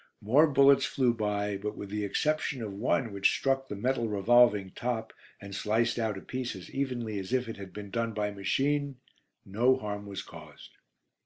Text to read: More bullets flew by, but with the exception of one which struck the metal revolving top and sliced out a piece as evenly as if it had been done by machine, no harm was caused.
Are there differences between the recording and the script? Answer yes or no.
no